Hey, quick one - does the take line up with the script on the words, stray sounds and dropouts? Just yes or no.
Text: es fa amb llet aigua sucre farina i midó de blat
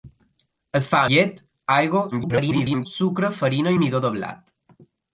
no